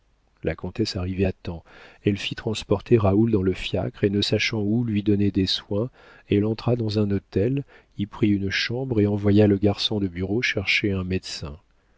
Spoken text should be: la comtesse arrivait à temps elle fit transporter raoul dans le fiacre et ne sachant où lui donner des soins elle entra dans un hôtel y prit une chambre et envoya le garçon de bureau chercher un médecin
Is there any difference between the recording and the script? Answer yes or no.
no